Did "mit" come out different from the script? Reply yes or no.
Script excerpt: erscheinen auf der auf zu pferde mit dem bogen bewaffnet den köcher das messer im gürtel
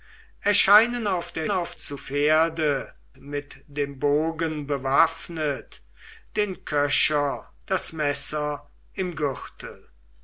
no